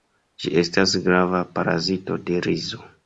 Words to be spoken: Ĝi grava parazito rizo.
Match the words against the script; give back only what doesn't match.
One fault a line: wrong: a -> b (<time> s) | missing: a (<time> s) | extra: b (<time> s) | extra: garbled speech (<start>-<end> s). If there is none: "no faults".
extra: estas (0.6 s)
extra: de (2.3 s)